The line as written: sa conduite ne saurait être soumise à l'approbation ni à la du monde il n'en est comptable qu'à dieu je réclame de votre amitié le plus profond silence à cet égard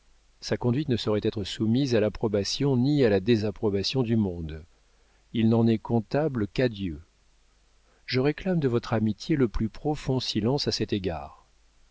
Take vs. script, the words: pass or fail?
fail